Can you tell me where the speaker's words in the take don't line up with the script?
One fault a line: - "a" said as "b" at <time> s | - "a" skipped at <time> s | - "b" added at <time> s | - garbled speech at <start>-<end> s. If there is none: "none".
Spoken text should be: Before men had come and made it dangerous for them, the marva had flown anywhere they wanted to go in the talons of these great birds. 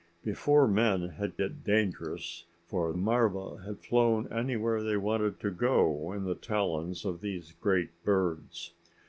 - "come and made" skipped at 1.4 s
- "them the" skipped at 2.9 s